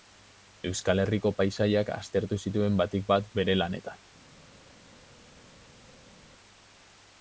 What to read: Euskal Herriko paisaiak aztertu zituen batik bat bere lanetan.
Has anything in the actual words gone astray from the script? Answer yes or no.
no